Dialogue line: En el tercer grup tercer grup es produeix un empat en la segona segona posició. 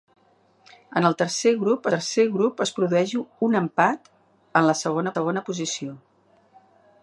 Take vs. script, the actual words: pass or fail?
pass